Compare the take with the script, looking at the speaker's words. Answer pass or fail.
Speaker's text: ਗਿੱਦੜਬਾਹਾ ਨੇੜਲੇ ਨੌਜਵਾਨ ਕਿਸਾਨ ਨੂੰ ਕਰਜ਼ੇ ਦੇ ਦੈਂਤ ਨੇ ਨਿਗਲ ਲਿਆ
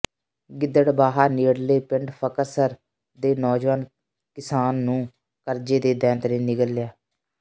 fail